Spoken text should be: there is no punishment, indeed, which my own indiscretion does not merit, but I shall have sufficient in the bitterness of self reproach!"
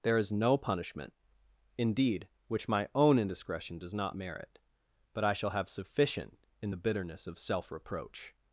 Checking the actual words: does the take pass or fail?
pass